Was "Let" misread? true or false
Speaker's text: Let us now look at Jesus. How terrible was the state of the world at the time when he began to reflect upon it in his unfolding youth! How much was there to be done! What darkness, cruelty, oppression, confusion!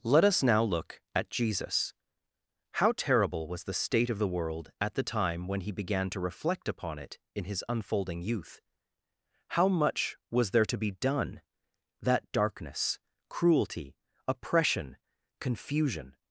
false